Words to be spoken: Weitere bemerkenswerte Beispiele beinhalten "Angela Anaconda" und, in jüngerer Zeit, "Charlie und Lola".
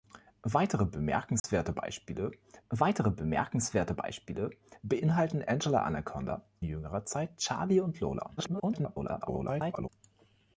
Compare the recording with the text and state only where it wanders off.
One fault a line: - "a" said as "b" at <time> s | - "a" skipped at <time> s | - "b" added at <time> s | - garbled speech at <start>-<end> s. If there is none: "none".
- "weitere bemerkenswerte Beispiele" added at 2.7 s
- "und in" skipped at 6.5 s
- garbled speech at 8.4-9.9 s